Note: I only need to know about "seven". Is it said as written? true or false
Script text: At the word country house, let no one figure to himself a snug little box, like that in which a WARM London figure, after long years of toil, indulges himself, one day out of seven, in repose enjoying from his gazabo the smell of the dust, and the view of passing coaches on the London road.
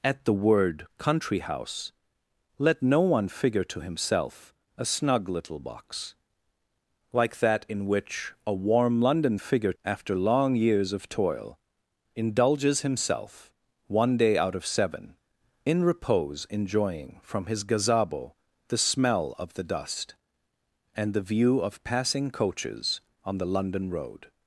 true